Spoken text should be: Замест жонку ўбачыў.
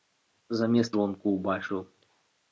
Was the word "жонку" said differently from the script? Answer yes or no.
no